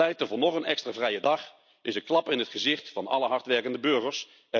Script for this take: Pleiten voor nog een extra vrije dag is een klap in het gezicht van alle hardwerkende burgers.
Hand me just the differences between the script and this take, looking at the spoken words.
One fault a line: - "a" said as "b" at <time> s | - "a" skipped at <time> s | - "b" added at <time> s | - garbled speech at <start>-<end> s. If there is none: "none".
none